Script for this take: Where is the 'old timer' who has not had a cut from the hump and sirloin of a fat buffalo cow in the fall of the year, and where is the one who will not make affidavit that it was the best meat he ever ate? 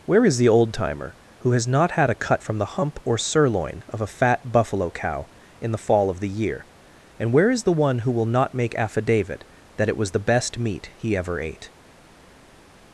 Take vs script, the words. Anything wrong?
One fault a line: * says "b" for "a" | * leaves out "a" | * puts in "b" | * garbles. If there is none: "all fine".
* says "or" for "and"